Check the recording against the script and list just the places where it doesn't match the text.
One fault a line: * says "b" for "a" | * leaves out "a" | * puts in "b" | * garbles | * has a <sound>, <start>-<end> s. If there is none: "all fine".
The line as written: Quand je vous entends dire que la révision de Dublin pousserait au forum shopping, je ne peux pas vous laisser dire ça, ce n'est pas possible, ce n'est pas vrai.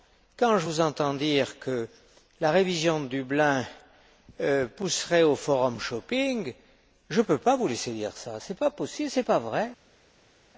all fine